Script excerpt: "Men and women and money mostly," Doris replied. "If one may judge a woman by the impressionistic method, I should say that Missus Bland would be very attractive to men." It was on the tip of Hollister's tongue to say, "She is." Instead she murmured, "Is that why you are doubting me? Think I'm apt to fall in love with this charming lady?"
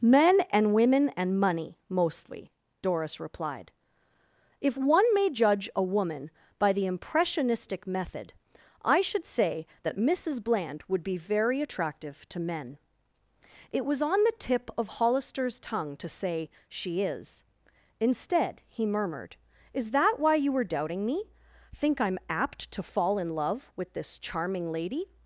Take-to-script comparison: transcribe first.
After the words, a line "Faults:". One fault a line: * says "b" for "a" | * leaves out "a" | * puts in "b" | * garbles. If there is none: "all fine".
"Men and women and money mostly," Doris replied. "If one may judge a woman by the impressionistic method, I should say that Missus Bland would be very attractive to men." It was on the tip of Hollister's tongue to say, "She is." Instead he murmured, "Is that why you were doubting me? Think I'm apt to fall in love with this charming lady?"
Faults:
* says "he" for "she"
* says "were" for "are"